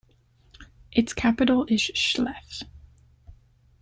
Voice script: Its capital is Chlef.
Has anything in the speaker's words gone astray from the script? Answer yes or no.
no